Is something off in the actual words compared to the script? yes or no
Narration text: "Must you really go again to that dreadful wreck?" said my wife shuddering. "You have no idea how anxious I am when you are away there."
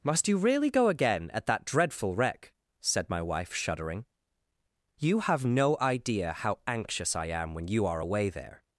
yes